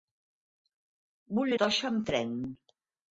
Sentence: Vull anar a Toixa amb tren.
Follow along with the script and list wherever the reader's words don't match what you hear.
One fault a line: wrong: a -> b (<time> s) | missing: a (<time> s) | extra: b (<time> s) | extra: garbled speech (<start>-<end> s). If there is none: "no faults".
missing: anar (1.5 s)